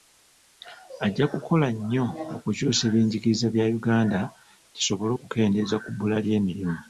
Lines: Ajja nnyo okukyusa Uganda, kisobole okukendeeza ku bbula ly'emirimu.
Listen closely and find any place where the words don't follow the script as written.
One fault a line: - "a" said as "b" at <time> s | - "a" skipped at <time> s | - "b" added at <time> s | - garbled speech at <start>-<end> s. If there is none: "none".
- "kukola" added at 1.3 s
- "ebyenjigiriza bya" added at 2.9 s